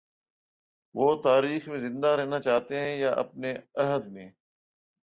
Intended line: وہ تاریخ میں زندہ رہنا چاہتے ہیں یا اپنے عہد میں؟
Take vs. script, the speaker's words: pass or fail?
pass